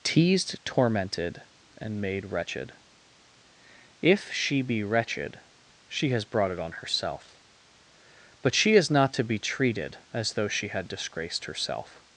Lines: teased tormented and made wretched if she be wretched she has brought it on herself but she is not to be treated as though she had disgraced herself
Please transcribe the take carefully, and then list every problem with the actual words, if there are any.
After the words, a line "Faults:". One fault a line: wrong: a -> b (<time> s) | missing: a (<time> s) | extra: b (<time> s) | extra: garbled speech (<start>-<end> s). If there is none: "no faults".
teased tormented and made wretched if she be wretched she has brought it on herself but she is not to be treated as though she had disgraced herself
Faults:
no faults